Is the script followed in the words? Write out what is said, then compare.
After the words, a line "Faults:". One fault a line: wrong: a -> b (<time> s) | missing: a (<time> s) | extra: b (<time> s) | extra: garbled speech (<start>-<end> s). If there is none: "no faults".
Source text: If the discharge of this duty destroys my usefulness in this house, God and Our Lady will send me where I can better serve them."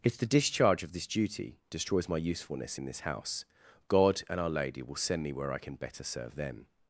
If the discharge of this duty destroys my usefulness in this house, God and Our Lady will send me where I can better serve them."
Faults:
no faults